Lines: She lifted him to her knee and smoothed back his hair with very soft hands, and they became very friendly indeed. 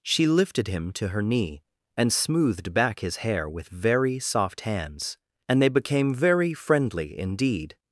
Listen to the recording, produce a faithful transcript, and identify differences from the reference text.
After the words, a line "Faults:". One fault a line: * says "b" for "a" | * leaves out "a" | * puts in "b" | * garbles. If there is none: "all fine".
She lifted him to her knee and smoothed back his hair with very soft hands, and they became very friendly indeed.
Faults:
all fine